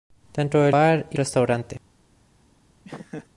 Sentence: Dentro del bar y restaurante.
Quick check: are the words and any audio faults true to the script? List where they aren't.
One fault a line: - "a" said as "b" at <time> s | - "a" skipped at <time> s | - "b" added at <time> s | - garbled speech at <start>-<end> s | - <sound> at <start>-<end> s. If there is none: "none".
- laugh at 2.8-3.3 s